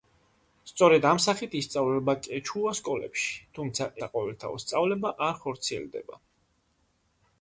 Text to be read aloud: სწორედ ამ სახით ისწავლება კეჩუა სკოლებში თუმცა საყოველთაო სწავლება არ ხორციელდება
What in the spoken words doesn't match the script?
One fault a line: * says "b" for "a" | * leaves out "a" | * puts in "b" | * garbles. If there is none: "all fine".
all fine